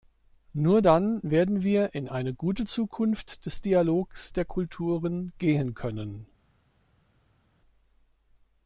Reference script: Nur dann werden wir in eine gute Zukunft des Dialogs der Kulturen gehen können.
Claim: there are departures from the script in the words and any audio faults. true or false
false